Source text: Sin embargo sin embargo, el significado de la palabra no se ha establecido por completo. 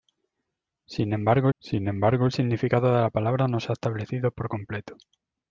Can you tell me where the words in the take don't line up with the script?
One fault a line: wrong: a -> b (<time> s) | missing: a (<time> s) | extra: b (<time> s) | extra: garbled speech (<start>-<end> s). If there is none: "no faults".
no faults